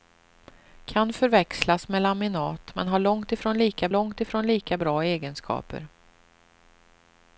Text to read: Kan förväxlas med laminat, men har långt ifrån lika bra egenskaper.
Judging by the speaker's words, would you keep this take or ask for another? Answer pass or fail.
fail